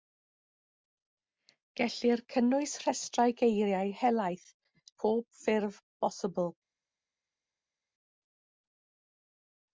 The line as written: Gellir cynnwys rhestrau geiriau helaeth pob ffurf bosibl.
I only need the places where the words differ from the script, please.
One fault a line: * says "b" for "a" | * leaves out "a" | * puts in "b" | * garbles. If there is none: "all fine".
all fine